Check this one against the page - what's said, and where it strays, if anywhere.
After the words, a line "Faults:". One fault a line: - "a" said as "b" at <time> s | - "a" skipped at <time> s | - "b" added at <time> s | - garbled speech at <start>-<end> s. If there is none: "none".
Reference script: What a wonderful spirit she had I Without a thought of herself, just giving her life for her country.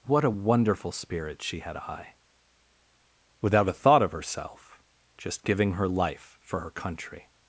What a wonderful spirit she had I Without a thought of herself, just giving her life for her country.
Faults:
none